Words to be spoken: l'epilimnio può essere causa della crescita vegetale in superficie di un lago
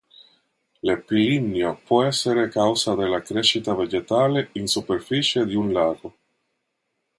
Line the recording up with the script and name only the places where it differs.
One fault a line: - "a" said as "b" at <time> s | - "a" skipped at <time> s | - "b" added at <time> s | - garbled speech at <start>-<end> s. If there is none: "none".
none